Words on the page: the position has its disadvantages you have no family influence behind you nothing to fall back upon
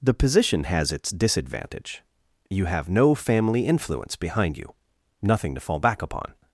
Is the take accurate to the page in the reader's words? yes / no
no